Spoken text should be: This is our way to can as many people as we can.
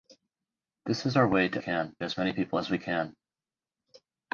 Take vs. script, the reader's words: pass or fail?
pass